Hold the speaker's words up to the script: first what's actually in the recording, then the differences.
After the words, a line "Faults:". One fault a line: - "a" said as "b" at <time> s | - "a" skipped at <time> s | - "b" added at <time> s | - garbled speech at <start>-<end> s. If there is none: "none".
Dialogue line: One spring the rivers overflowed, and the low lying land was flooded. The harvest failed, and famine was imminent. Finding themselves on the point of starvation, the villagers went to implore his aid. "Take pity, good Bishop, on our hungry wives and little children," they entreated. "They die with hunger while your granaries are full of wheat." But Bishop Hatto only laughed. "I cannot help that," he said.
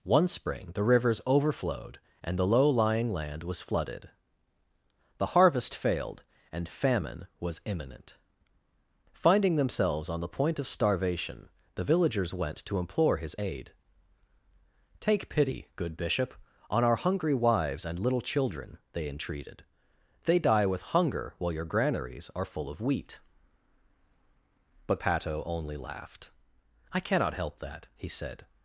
One spring the rivers overflowed, and the low lying land was flooded. The harvest failed, and famine was imminent. Finding themselves on the point of starvation, the villagers went to implore his aid. "Take pity, good Bishop, on our hungry wives and little children," they entreated. "They die with hunger while your granaries are full of wheat." But Hatto only laughed. "I cannot help that," he said.
Faults:
- "Bishop" skipped at 25.0 s